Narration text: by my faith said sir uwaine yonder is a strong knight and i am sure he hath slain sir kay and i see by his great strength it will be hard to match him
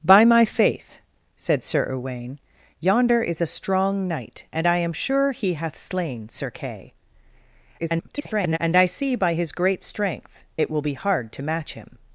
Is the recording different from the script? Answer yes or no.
yes